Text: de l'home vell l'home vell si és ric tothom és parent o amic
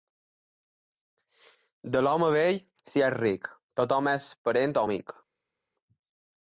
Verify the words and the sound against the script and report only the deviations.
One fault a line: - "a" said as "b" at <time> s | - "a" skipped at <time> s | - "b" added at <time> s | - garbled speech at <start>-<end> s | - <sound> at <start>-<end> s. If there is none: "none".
- "l'home vell" skipped at 2.6 s